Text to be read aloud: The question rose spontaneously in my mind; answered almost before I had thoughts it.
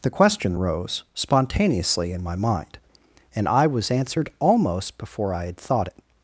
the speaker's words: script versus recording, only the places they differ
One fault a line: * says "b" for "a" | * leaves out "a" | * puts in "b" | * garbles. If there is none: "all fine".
* puts in "and I was"
* says "thought" for "thoughts"